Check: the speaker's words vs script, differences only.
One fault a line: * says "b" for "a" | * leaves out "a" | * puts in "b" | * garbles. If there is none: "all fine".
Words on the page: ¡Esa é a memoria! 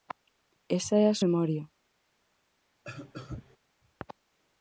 all fine